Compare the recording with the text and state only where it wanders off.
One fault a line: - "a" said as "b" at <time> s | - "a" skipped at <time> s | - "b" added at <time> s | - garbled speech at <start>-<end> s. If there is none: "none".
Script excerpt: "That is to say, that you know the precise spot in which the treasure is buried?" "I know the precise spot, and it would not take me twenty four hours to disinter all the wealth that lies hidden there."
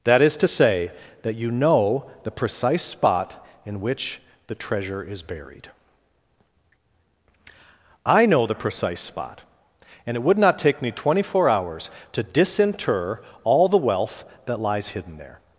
none